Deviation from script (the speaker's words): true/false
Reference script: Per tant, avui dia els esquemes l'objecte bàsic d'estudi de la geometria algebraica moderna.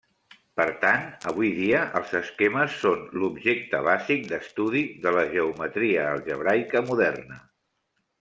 true